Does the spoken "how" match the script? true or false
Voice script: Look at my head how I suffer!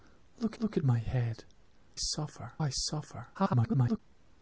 false